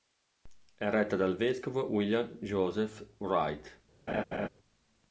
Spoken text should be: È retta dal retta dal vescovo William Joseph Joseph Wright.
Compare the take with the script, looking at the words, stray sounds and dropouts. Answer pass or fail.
fail